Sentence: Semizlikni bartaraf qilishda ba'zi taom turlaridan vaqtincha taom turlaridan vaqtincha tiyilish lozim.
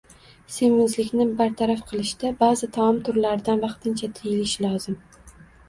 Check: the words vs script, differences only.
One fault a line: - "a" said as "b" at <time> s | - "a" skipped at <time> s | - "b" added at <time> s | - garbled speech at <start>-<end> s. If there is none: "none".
- "taom turlaridan vaqtincha" skipped at 4.1 s